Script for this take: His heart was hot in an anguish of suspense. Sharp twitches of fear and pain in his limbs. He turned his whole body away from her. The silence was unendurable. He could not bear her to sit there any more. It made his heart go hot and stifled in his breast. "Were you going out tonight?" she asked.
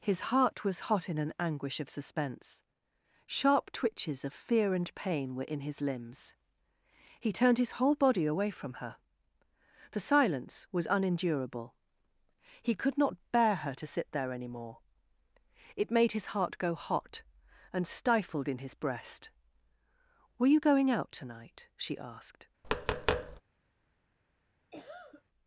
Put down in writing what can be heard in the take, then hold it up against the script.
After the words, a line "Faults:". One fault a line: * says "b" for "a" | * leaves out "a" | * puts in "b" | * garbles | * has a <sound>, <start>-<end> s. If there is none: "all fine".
His heart was hot in an anguish of suspense. Sharp twitches of fear and pain were in his limbs. He turned his whole body away from her. The silence was unendurable. He could not bear her to sit there any more. It made his heart go hot and stifled in his breast. "Were you going out tonight?" she asked.
Faults:
* puts in "were"
* has a tap, 22.6-23.4 s
* has a cough, 24.7-25.2 s